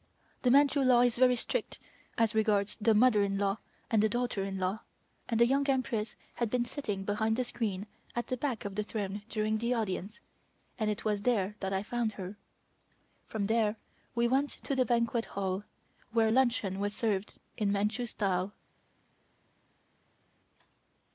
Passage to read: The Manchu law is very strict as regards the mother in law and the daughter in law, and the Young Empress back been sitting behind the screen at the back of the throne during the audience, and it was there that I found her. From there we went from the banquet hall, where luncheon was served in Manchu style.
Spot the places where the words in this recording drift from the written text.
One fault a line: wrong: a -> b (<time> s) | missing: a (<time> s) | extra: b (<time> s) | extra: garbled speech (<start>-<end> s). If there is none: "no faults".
wrong: back -> had (6.4 s)
wrong: from -> to (14.5 s)